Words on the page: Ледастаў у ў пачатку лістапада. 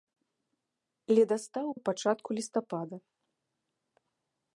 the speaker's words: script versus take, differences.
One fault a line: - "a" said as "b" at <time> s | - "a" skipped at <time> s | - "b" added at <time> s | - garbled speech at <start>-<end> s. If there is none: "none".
none